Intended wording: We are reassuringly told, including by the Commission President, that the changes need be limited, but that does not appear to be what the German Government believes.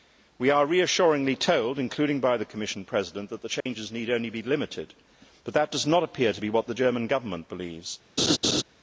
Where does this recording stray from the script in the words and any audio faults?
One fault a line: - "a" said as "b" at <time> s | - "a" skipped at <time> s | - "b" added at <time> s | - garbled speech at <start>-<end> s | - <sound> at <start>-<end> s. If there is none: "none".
- dropout at 3.6-3.7 s
- "only" added at 4.1 s
- laugh at 8.2-8.6 s